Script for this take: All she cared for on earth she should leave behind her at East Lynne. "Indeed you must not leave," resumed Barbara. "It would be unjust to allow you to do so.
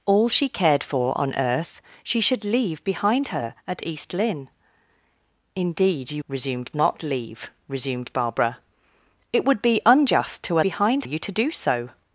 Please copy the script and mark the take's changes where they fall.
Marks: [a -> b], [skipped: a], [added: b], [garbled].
All she cared for on earth she should leave behind her at East Lynne. "Indeed you [must -> resumed] not leave," resumed Barbara. "It would be unjust to [allow -> behind] you to do so.